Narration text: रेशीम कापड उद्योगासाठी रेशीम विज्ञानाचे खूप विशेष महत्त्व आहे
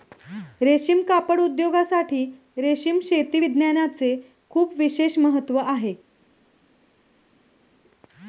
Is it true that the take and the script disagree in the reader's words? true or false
true